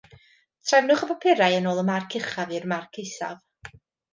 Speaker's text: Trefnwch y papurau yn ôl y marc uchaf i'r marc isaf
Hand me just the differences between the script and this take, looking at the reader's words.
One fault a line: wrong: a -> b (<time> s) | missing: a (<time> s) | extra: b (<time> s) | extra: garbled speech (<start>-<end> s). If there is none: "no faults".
no faults